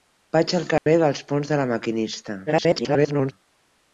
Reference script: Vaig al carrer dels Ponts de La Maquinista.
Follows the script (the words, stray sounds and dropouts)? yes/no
no